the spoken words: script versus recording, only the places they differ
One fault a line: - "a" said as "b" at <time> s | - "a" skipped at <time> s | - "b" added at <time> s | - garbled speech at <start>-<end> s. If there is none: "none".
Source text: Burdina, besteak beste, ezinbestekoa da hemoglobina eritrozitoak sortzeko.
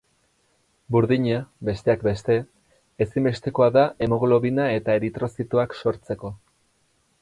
- "eta" added at 4.8 s